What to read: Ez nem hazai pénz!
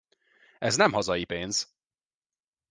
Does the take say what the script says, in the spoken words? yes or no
yes